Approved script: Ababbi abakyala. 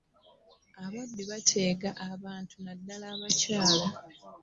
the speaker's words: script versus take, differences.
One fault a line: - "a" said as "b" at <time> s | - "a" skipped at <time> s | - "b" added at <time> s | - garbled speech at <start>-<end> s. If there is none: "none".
- "bateega abantu naddala" added at 1.3 s